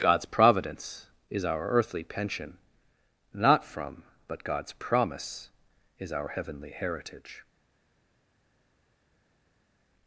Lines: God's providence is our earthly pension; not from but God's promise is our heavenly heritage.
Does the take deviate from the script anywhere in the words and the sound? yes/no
no